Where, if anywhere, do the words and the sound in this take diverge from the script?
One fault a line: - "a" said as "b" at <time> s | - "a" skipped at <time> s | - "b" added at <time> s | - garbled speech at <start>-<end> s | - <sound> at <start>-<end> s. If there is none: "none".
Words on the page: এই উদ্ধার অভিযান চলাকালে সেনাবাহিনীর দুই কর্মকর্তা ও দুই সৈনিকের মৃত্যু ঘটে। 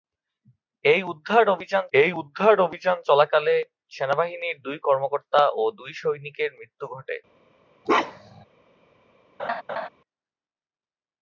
- "এই উদ্ধার অভিযান" added at 1.9 s
- bark at 7.9-8.5 s
- laugh at 9.4-9.9 s